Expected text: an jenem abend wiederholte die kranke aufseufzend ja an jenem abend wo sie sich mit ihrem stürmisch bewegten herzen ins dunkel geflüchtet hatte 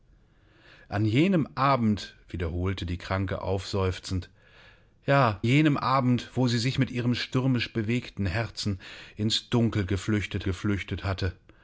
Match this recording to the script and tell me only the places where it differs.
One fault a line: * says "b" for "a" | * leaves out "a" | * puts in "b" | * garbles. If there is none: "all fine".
* leaves out "an"
* puts in "geflüchtet"